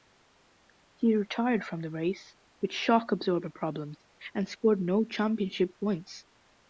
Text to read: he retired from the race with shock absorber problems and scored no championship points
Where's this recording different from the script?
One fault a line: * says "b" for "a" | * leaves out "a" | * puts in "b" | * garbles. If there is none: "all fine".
all fine